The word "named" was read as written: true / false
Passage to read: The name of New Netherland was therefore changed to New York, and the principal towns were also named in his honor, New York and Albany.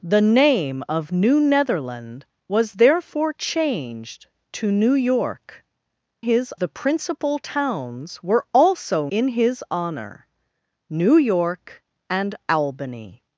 false